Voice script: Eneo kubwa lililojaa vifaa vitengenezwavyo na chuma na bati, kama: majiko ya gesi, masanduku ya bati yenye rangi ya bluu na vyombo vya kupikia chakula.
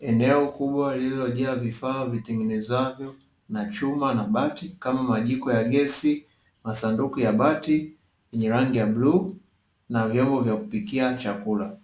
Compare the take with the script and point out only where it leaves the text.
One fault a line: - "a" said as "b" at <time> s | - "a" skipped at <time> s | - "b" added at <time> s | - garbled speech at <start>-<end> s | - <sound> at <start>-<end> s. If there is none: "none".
none